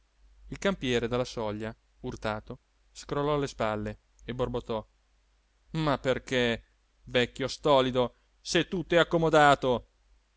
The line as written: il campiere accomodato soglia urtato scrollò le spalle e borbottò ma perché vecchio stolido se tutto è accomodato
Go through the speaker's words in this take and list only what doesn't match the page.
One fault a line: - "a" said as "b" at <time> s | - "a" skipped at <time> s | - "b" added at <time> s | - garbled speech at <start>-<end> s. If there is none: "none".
- "accomodato" said as "dalla" at 1.1 s